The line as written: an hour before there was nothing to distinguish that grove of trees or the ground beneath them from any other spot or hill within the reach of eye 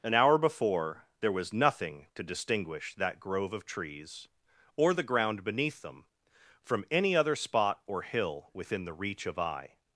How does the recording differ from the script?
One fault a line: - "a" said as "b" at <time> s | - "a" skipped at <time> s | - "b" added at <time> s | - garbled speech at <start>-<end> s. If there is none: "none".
none